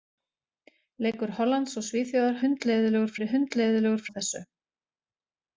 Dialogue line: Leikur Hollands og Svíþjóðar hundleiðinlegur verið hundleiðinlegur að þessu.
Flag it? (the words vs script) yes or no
no